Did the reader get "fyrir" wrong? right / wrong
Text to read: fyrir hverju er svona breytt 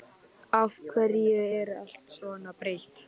wrong